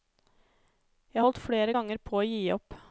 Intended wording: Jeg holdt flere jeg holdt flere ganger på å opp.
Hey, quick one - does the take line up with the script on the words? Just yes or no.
no